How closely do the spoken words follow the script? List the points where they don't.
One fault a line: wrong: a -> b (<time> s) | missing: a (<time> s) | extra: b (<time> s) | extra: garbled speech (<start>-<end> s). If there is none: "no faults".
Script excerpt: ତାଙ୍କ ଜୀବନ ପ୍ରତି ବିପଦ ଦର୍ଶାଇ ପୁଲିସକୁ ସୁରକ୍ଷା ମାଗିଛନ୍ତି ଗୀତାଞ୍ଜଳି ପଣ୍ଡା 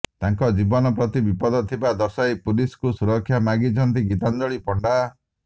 extra: ଥିବା (1.7 s)